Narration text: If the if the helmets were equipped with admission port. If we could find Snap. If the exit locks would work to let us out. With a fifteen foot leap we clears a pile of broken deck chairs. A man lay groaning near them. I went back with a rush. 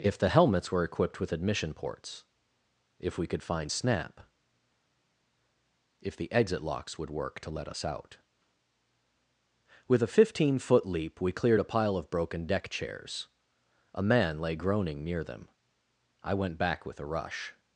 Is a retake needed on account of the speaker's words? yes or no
yes